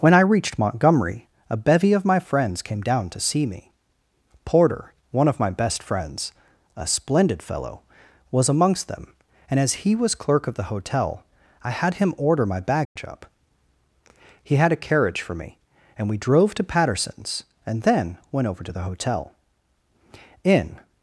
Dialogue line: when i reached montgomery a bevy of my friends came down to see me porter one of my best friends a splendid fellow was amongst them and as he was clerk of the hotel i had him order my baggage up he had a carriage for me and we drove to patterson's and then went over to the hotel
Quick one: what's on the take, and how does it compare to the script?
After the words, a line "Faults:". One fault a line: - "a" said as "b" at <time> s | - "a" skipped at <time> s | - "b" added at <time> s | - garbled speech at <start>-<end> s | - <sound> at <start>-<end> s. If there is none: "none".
when i reached montgomery a bevy of my friends came down to see me porter one of my best friends a splendid fellow was amongst them and as he was clerk of the hotel i had him order my baggage up he had a carriage for me and we drove to patterson's and then went over to the hotel in
Faults:
- dropout at 12.8-13.0 s
- "in" added at 20.4 s